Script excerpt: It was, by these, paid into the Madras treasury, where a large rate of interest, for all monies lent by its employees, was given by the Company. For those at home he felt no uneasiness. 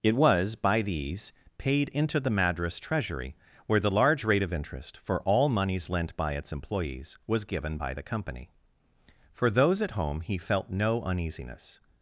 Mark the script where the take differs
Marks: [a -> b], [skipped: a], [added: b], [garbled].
It was, by these, paid into the Madras treasury, where [a -> the] large rate of interest, for all monies lent by its employees, was given by the Company. For those at home he felt no uneasiness.